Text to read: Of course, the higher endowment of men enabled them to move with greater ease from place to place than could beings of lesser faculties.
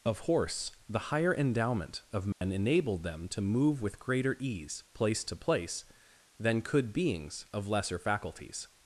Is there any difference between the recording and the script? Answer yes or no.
yes